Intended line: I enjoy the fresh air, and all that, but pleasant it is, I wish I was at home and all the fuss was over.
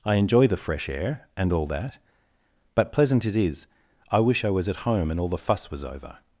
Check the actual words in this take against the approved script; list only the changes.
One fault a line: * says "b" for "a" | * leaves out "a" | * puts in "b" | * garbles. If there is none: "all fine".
all fine